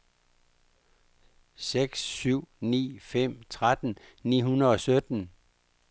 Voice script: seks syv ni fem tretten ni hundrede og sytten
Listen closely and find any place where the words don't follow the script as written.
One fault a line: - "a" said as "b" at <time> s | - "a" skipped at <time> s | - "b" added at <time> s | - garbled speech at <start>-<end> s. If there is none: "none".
none